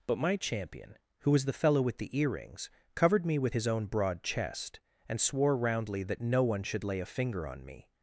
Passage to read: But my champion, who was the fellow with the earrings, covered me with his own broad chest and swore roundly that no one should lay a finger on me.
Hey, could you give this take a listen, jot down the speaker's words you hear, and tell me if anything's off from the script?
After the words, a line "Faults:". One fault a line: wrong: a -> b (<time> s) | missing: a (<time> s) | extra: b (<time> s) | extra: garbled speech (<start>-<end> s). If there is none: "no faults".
But my champion, who was the fellow with the earrings, covered me with his own broad chest and swore roundly that no one should lay a finger on me.
Faults:
no faults